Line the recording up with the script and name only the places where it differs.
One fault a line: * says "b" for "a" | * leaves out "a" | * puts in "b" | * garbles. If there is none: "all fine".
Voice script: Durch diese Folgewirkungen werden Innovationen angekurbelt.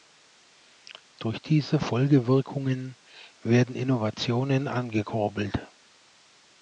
all fine